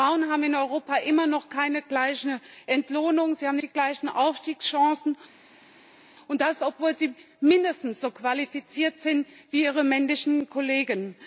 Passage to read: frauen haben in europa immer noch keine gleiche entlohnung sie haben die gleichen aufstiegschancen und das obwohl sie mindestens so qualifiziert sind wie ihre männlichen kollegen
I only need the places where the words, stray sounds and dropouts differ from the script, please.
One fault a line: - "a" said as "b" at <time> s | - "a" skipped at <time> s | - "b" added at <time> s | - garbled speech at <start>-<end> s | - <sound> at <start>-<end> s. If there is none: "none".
none